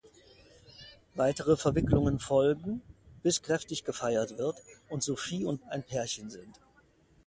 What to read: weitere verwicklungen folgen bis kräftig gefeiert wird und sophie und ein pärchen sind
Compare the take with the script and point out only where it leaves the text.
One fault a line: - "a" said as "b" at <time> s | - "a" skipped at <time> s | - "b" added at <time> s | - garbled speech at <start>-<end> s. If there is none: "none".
none